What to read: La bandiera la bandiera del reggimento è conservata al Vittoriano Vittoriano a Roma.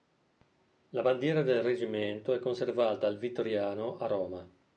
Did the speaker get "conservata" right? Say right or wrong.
right